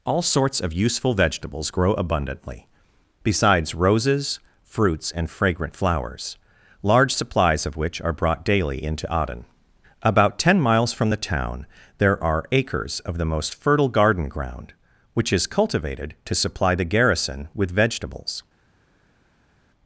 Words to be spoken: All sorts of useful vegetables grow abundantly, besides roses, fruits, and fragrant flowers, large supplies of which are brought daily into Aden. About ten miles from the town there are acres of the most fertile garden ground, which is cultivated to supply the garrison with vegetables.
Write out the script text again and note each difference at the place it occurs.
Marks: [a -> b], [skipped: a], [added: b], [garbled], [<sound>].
All sorts of useful vegetables grow abundantly, besides roses, fruits, and fragrant flowers, large supplies of which are brought daily into Aden. About ten miles from the town there are acres of the most fertile garden ground, which is cultivated to supply the garrison with vegetables.